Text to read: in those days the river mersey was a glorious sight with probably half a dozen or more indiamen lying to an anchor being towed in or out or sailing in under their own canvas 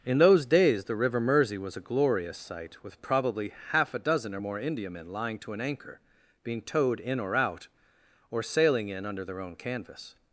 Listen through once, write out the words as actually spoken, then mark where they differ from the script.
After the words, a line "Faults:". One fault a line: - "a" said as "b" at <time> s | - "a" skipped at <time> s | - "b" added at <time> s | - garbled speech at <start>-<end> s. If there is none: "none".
in those days the river mersey was a glorious sight with probably half a dozen or more indiamen lying to an anchor being towed in or out or sailing in under their own canvas
Faults:
none